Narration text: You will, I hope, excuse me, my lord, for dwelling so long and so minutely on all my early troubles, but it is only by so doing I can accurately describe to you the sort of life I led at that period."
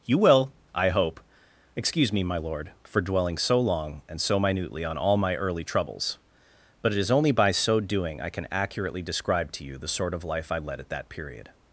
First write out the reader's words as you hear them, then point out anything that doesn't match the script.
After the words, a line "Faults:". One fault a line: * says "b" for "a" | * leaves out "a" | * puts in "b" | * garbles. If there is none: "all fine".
You will, I hope, excuse me, my lord, for dwelling so long and so minutely on all my early troubles, but it is only by so doing I can accurately describe to you the sort of life I led at that period."
Faults:
all fine